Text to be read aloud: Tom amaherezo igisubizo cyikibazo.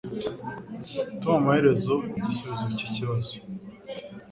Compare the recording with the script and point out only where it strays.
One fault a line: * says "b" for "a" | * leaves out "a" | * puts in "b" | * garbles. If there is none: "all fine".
all fine